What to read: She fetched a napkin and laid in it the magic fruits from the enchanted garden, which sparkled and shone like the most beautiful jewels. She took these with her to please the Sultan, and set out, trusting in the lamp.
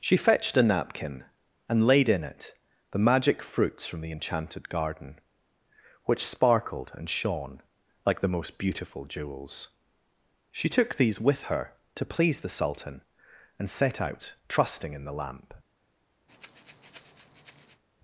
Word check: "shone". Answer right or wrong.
right